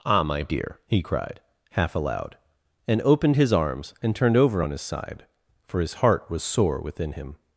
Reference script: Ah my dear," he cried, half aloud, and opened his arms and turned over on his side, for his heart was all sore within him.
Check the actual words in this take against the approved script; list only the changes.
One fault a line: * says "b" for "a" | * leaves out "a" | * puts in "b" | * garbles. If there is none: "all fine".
* leaves out "all"